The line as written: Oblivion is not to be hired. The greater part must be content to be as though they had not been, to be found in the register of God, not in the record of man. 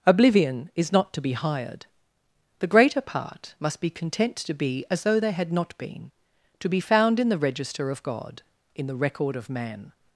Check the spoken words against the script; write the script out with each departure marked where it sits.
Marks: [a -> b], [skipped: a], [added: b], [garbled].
Oblivion is not to be hired. The greater part must be content to be as though they had not been, to be found in the register of God, [skipped: not] in the record of man.